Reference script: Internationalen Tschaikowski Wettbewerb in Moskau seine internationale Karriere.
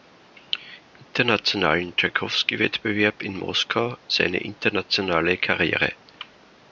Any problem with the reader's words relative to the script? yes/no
no